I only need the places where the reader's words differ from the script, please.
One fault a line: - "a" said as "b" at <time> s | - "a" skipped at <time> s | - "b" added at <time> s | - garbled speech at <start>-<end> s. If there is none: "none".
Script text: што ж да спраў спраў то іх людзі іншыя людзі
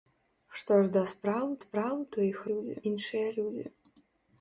none